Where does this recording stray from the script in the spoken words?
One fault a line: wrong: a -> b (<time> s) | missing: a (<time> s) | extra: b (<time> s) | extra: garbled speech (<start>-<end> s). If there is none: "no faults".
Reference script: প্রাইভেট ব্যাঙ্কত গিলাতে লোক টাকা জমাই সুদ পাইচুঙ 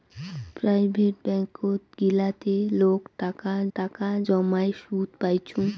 extra: টাকা (3.8 s)